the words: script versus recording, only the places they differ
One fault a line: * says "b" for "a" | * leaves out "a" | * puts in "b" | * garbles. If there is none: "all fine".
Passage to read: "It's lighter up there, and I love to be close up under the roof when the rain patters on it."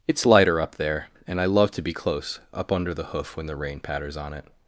* says "hoof" for "roof"